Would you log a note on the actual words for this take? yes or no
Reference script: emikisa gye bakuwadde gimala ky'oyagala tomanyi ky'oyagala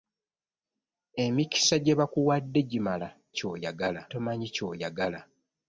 no